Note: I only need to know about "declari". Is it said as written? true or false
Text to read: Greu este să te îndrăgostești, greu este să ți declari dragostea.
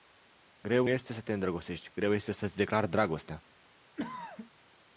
true